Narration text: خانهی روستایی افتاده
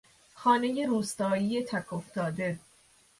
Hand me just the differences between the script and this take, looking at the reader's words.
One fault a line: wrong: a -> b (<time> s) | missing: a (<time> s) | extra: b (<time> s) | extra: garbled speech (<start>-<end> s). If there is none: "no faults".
extra: تک (1.6 s)